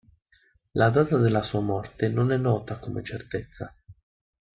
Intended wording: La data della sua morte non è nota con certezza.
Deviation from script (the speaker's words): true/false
false